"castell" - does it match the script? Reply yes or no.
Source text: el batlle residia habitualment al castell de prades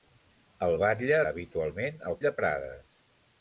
no